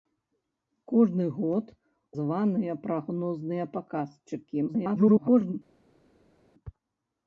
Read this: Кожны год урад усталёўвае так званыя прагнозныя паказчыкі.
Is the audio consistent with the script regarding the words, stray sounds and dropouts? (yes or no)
no